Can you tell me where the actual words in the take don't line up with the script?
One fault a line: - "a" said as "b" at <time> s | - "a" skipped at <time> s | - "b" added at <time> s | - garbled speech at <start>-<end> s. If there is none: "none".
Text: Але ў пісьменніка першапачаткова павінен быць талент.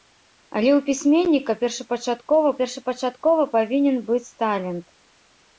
- "першапачаткова" added at 2.6 s